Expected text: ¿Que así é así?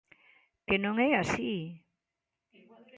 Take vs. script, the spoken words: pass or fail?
fail